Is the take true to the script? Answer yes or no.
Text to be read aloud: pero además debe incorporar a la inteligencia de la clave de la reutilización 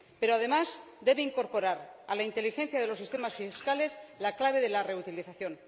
no